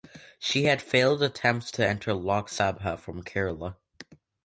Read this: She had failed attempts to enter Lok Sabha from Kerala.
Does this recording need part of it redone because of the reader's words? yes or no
no